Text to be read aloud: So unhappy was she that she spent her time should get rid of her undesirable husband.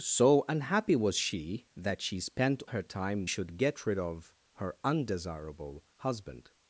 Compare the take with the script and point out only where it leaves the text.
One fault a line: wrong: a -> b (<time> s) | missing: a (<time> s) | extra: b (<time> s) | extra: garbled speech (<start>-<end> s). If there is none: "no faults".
no faults